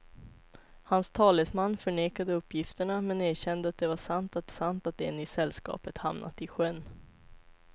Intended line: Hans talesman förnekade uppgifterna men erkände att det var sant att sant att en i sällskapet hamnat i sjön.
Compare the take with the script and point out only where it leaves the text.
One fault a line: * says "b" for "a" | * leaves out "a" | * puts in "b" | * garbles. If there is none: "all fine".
all fine